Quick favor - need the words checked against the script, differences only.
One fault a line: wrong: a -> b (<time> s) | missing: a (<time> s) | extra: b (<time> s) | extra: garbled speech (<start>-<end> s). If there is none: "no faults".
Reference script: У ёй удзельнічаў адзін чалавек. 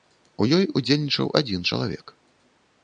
no faults